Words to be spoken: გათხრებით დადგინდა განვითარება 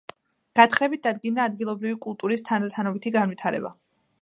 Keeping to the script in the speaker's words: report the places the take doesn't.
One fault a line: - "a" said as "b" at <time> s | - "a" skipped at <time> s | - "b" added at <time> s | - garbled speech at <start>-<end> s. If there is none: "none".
- "ადგილობრივი კულტურის თანდათანობითი" added at 1.5 s